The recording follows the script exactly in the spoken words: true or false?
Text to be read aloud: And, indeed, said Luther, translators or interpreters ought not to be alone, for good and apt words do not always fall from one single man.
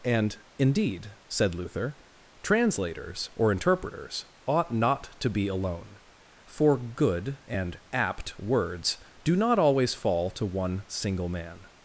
false